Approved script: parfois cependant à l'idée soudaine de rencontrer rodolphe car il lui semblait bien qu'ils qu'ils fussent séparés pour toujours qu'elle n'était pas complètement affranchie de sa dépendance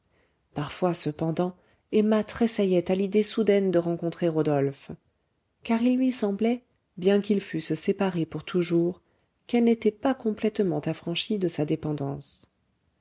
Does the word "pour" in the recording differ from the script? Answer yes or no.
no